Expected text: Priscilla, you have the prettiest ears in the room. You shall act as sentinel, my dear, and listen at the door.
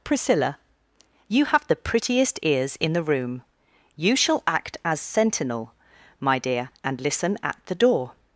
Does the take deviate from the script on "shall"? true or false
false